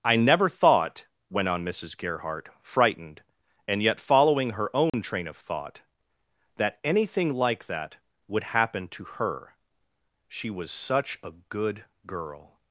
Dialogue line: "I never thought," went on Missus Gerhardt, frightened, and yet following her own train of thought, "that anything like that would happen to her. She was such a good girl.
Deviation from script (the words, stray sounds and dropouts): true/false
true